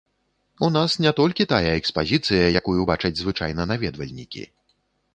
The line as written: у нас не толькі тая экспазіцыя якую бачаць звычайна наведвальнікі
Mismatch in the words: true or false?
false